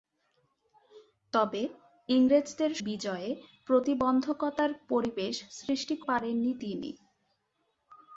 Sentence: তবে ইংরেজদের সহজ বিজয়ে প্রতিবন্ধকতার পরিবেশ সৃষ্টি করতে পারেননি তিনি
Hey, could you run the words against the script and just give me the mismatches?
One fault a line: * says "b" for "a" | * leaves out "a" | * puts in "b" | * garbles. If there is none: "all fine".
* leaves out "সহজ"
* leaves out "করতে"